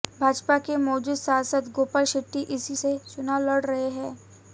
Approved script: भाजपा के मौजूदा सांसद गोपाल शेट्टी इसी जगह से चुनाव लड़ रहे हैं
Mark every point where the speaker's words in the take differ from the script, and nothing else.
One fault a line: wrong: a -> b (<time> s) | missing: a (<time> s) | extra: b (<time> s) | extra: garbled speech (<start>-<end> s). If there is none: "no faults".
missing: जगह (2.8 s)